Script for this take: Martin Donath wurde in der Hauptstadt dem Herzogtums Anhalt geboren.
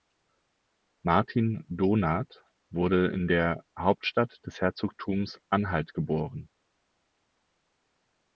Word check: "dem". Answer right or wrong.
wrong